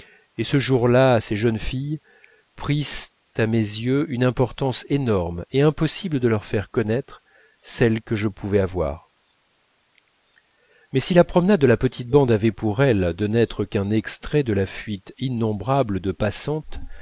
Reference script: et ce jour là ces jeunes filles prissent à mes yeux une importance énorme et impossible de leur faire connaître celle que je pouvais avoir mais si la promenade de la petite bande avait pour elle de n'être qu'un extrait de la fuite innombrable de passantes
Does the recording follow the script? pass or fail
pass